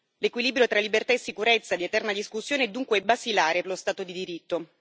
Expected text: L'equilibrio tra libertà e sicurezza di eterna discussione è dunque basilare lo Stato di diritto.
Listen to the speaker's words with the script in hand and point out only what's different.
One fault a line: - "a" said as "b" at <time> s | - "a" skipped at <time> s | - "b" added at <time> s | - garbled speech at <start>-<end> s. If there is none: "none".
none